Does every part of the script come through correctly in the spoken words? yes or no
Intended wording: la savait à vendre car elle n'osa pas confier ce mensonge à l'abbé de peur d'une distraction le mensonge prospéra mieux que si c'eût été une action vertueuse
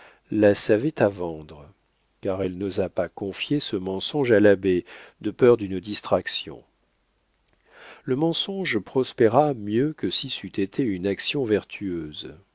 yes